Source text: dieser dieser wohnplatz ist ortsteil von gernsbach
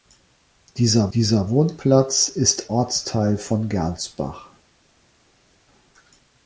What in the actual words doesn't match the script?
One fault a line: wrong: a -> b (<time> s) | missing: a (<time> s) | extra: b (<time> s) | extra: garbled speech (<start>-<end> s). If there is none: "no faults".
no faults